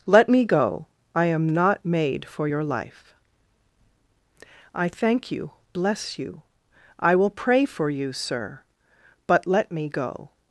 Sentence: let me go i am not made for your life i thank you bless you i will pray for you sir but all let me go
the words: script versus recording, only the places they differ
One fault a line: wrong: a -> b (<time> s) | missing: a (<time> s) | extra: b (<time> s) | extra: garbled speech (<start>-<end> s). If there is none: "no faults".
missing: all (9.5 s)